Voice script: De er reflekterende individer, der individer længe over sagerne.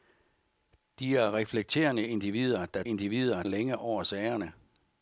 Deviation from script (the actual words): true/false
false